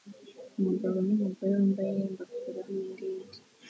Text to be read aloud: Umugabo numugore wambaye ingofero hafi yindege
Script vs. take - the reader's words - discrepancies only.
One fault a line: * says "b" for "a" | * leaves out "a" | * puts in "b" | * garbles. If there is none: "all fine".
* leaves out "hafi"